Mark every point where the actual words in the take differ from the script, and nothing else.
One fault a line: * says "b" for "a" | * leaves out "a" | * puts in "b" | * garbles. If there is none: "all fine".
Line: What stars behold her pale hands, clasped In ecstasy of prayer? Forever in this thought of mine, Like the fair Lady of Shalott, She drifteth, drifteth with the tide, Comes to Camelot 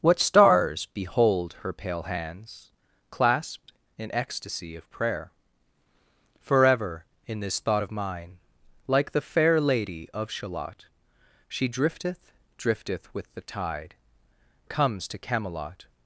all fine